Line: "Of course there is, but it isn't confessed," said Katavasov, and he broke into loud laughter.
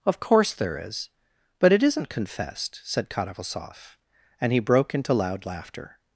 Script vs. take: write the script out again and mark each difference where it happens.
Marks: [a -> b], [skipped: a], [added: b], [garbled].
"Of course there is, but it isn't confessed," said Katavasov, and he broke into loud laughter.